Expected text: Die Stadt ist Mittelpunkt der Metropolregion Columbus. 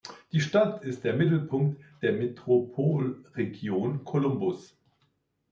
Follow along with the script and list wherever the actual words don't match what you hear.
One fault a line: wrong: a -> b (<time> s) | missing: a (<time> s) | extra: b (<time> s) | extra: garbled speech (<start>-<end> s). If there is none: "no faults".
extra: der (1.0 s)